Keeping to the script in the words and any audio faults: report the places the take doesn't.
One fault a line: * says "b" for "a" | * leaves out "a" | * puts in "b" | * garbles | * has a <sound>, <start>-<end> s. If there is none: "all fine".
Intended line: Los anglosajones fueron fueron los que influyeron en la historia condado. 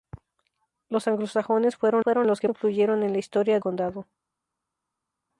all fine